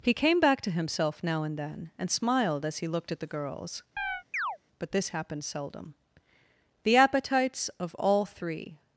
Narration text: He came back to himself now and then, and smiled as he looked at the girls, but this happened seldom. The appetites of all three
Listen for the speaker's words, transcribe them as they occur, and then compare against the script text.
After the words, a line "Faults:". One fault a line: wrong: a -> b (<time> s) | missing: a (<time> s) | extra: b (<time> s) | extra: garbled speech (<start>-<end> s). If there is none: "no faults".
He came back to himself now and then, and smiled as he looked at the girls, but this happened seldom. The appetites of all three
Faults:
no faults